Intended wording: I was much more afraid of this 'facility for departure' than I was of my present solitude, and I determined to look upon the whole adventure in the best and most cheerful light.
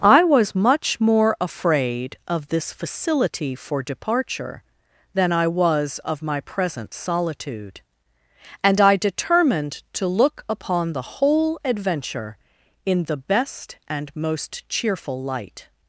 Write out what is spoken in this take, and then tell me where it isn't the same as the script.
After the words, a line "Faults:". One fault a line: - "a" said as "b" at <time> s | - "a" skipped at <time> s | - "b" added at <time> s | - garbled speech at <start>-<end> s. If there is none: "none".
I was much more afraid of this 'facility for departure' than I was of my present solitude, and I determined to look upon the whole adventure in the best and most cheerful light.
Faults:
none